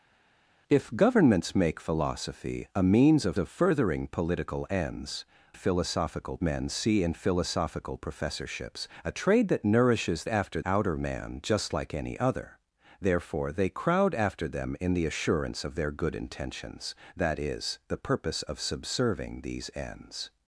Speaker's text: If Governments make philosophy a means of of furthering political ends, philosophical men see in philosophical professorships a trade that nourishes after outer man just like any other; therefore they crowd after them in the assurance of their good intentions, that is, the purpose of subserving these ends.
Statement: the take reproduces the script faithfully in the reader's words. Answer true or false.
true